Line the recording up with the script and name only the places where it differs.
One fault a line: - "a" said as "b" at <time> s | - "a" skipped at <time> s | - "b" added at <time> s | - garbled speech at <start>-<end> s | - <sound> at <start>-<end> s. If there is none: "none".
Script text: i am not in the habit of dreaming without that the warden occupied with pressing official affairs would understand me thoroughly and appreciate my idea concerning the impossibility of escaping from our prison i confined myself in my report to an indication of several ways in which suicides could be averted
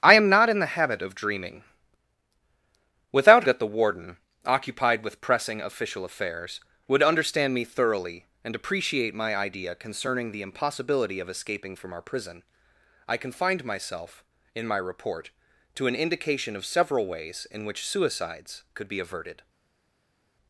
none